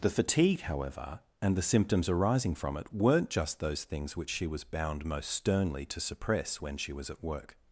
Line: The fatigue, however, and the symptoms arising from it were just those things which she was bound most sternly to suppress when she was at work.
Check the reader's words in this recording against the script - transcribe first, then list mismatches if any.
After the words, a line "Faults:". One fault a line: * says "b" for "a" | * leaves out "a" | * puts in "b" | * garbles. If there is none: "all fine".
The fatigue, however, and the symptoms arising from it weren't just those things which she was bound most sternly to suppress when she was at work.
Faults:
* says "weren't" for "were"